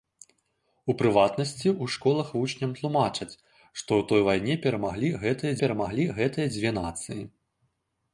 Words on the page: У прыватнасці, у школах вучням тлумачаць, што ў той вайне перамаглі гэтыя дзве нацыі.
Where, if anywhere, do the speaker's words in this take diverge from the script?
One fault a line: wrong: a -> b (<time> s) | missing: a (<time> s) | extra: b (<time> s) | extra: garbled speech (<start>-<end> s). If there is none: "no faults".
extra: перамаглі гэтыя (5.6 s)